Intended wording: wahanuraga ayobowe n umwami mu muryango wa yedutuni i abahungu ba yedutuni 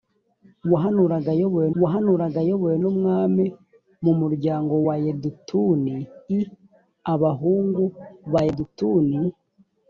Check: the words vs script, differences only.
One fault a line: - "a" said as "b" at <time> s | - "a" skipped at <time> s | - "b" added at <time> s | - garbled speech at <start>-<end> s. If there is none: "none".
- "wahanuraga ayobowe" added at 1.8 s